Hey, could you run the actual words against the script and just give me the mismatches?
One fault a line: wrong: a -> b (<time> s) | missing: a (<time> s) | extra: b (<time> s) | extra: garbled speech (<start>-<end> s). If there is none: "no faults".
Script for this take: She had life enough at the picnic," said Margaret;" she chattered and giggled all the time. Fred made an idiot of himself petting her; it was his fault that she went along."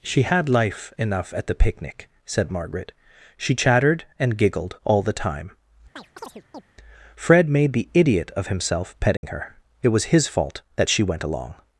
wrong: an -> the (7.7 s)